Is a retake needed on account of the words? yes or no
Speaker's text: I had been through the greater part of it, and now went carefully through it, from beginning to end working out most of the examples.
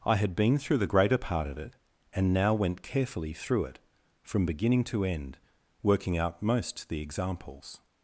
yes